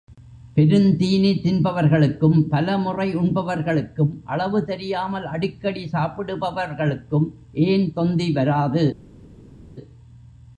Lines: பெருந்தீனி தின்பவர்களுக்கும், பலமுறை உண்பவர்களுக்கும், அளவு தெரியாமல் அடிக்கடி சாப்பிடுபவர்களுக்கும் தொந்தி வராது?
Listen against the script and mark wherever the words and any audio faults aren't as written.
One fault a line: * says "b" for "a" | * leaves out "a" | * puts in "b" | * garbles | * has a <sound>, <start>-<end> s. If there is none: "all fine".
* puts in "ஏன்"